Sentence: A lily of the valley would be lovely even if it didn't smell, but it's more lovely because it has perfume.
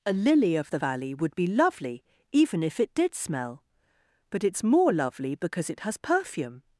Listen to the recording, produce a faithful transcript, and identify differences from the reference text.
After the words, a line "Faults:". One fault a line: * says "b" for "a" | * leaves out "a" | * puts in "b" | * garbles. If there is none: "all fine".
A lily of the valley would be lovely even if it did smell, but it's more lovely because it has perfume.
Faults:
* says "did" for "didn't"